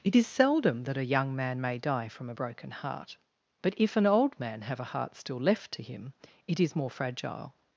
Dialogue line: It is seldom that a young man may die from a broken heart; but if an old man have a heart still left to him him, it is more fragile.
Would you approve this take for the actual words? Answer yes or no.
no